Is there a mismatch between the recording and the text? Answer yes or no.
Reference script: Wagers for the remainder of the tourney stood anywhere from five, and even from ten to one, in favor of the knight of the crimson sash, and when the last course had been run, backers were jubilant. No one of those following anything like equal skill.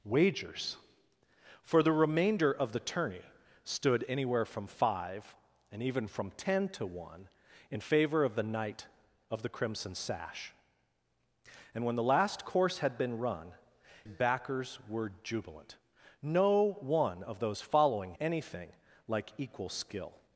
no